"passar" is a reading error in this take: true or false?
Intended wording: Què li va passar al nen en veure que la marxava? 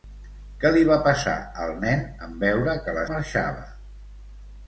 false